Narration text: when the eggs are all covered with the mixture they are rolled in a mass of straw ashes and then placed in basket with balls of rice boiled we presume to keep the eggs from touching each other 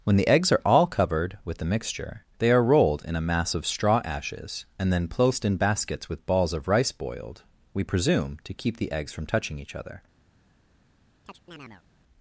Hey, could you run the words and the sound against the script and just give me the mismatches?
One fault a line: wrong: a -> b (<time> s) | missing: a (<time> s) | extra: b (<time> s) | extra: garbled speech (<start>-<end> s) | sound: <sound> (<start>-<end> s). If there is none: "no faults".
wrong: basket -> baskets (5.6 s)
sound: chirp (11.2-11.8 s)